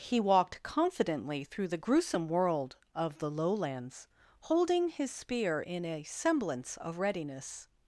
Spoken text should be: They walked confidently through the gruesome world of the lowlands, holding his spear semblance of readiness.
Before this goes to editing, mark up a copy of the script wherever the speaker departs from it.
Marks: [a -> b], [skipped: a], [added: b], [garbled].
[They -> He] walked confidently through the gruesome world of the lowlands, holding his spear [added: in a] semblance of readiness.